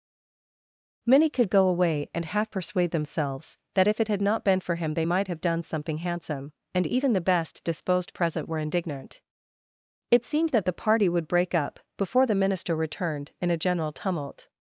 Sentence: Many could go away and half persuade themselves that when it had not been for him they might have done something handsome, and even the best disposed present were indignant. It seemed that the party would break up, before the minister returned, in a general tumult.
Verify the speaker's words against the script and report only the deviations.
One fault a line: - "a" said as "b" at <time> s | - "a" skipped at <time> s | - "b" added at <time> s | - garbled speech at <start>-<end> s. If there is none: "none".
- "when" said as "if" at 3.9 s